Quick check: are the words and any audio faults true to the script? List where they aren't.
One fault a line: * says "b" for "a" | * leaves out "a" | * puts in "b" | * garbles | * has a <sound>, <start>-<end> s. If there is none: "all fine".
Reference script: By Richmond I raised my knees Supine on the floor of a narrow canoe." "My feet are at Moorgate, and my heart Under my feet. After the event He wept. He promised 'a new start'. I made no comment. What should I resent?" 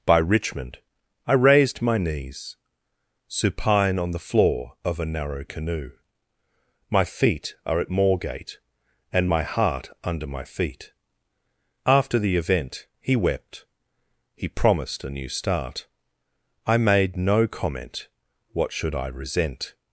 all fine